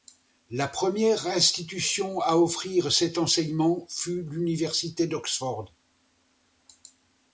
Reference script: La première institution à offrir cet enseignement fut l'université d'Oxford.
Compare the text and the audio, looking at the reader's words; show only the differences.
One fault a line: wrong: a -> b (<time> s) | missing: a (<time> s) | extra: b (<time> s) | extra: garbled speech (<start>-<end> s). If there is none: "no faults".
no faults